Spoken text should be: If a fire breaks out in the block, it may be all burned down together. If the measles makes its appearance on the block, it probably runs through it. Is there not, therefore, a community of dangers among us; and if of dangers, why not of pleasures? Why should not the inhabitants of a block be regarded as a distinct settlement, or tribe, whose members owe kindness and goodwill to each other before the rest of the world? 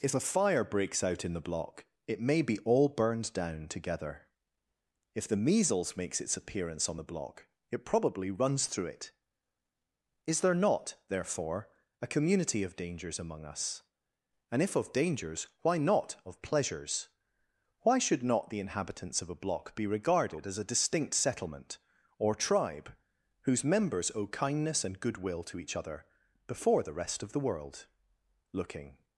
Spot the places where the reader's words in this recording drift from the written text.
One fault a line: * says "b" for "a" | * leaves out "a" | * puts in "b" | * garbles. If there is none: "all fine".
* puts in "Looking"